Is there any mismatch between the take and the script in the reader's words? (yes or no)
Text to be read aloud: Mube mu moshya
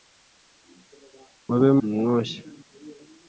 no